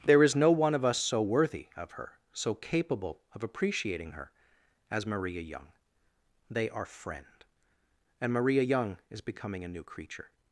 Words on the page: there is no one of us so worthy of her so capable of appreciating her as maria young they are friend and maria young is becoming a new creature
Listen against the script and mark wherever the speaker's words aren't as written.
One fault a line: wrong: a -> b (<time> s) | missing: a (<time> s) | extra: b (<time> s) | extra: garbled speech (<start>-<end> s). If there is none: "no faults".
no faults